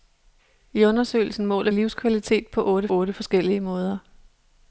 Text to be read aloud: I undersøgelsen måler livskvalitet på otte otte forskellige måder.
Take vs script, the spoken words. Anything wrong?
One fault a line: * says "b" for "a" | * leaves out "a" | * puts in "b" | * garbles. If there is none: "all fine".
all fine